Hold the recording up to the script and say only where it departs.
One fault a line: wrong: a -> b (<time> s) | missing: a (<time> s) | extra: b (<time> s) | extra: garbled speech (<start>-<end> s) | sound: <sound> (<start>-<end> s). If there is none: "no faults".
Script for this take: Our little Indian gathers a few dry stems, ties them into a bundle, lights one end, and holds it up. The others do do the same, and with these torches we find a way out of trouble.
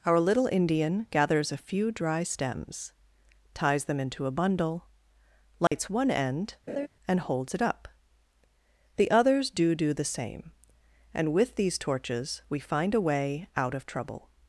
sound: dropout (5.7-5.7 s)
sound: laugh (6.7-6.9 s)